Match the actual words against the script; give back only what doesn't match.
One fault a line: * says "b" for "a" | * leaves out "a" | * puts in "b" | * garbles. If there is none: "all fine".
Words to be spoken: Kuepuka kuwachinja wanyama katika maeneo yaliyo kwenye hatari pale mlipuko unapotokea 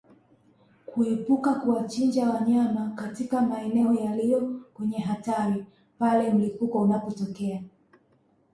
all fine